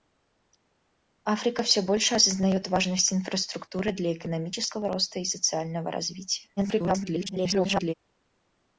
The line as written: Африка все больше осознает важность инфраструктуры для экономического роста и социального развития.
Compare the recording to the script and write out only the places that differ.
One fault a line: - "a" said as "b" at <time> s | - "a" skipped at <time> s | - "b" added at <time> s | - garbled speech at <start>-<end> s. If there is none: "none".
- garbled speech at 6.6-7.9 s